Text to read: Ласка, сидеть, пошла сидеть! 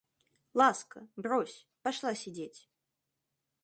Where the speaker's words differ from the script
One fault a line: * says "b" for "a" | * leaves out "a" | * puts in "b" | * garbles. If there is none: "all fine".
* says "брось" for "сидеть"